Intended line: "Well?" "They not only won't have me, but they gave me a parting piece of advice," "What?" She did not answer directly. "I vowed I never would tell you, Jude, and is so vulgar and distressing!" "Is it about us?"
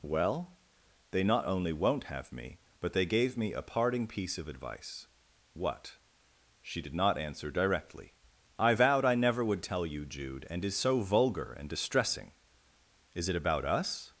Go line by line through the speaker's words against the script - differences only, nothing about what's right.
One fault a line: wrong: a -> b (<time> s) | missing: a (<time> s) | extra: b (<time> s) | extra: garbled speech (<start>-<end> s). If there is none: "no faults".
no faults